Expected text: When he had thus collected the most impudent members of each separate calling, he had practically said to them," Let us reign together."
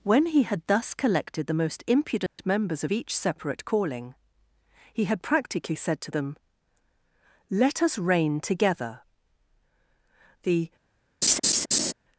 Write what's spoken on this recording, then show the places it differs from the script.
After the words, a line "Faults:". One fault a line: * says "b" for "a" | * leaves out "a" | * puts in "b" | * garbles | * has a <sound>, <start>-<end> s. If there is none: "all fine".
When he had thus collected the most impudent members of each separate calling, he had practically said to them," Let us reign together." The
Faults:
* has a dropout, 2.3-2.4 s
* puts in "The"
* has a laugh, 11.2-11.9 s